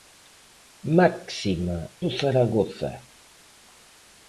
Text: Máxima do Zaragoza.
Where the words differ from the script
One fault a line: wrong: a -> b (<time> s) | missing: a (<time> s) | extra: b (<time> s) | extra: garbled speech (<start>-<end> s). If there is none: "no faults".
no faults